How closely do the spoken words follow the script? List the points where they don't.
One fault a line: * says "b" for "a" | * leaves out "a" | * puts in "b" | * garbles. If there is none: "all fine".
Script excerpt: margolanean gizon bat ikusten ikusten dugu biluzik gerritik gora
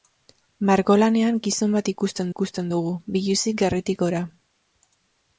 all fine